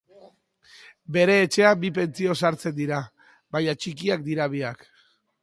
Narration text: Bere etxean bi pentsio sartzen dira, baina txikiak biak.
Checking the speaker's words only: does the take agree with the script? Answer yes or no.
no